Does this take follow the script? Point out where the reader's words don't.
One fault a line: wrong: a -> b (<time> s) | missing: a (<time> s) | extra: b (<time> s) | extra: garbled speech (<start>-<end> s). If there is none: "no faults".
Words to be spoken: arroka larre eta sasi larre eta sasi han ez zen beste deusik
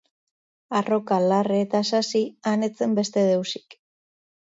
missing: larre eta sasi (2.2 s)